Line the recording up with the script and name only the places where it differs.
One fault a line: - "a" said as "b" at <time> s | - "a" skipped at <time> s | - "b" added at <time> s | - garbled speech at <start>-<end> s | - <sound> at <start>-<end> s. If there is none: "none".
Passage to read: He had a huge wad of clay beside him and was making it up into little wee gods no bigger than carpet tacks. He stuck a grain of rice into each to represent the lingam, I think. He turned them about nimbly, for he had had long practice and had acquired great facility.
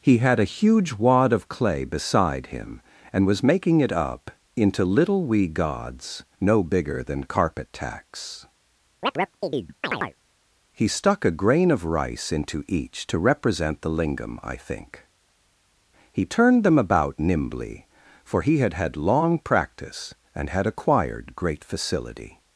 - chirp at 9.0-10.2 s